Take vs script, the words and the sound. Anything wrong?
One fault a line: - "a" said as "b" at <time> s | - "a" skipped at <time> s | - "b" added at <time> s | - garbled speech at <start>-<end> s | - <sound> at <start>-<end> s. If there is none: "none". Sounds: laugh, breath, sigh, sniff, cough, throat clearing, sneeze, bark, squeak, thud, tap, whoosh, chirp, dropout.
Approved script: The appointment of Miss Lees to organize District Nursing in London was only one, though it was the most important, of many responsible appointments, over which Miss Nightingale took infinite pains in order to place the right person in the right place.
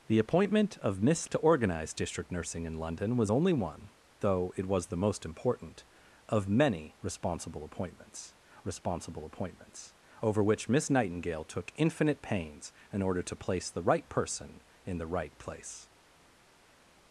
- "Lees" skipped at 1.3 s
- "responsible appointments" added at 8.6 s